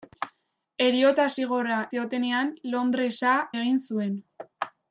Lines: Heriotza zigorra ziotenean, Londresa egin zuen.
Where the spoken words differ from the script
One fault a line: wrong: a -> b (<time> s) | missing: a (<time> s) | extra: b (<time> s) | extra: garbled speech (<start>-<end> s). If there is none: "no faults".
no faults